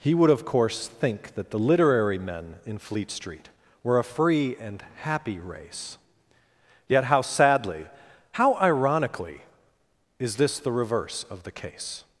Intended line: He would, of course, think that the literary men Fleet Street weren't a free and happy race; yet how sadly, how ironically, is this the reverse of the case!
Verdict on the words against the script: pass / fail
fail